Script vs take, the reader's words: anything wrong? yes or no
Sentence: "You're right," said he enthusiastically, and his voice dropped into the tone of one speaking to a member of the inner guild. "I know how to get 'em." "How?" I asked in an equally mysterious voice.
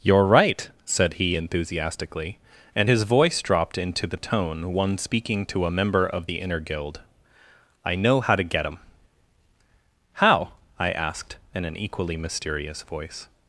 yes